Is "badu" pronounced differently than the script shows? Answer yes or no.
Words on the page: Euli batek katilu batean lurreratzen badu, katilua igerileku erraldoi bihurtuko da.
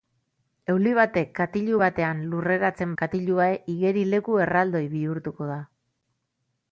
yes